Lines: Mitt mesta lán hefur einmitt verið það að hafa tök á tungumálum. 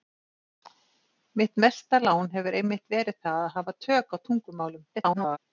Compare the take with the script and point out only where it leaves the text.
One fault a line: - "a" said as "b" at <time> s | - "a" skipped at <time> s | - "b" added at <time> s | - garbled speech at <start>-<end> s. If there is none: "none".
- garbled speech at 4.9-5.4 s